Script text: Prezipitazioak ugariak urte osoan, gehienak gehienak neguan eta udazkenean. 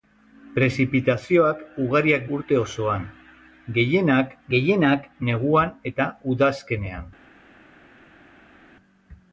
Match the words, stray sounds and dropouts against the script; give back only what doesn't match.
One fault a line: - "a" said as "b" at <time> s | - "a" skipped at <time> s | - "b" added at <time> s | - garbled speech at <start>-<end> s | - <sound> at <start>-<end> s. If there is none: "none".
none